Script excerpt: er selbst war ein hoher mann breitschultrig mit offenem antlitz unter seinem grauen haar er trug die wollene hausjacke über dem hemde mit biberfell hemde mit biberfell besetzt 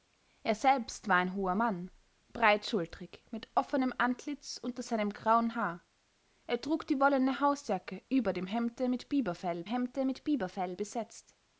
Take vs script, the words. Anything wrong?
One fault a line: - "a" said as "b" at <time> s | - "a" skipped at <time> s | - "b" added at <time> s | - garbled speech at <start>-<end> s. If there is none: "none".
none